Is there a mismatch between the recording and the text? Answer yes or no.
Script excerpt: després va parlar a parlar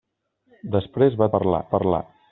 no